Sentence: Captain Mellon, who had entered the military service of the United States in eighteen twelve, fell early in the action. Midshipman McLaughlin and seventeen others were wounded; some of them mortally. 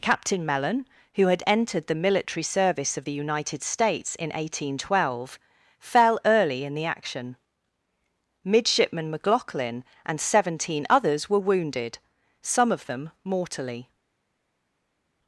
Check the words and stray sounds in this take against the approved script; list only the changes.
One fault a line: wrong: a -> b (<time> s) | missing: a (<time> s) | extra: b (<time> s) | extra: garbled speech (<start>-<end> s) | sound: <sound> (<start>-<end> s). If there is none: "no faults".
no faults